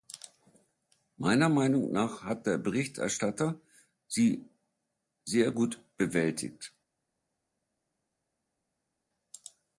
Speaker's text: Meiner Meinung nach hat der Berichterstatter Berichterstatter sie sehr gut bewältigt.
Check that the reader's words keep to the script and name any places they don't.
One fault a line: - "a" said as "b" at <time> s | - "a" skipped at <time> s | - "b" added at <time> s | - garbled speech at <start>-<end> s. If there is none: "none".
- "Berichterstatter" skipped at 3.6 s